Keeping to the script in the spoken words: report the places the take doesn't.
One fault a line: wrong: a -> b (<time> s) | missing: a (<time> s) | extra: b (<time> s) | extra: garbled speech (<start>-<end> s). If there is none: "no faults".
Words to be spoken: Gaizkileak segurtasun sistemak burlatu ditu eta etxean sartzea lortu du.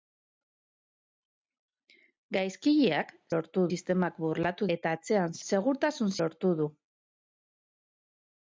wrong: segurtasun -> lortu (3.3 s)
missing: ditu (4.7 s)
wrong: sartzea -> segurtasun (5.5 s)